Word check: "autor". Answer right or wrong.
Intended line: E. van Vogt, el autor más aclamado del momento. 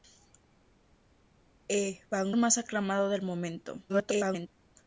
wrong